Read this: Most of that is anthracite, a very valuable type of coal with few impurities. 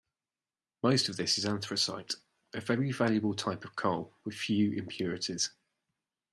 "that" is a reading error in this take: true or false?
true